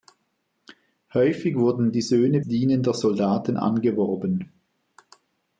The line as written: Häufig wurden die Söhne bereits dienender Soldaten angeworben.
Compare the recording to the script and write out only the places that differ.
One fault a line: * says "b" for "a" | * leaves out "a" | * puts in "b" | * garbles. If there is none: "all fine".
* leaves out "bereits"